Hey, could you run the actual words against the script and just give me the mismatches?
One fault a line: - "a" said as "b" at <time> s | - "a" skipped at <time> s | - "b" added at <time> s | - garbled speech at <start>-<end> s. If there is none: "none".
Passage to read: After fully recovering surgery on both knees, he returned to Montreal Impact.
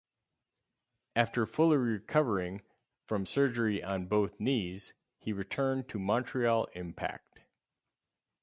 - "from" added at 3.0 s